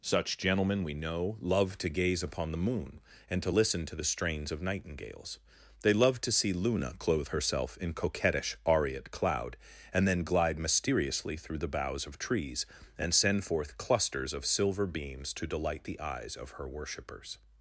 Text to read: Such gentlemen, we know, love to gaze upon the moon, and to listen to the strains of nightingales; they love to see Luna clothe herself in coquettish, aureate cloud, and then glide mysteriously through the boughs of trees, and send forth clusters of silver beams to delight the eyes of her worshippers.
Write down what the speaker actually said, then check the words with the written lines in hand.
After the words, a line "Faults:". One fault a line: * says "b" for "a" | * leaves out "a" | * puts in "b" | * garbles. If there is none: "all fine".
Such gentlemen, we know, love to gaze upon the moon, and to listen to the strains of nightingales; they love to see Luna clothe herself in coquettish, aureate cloud, and then glide mysteriously through the boughs of trees, and send forth clusters of silver beams to delight the eyes of her worshippers.
Faults:
all fine